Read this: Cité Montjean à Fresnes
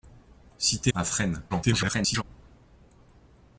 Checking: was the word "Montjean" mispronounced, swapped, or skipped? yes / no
yes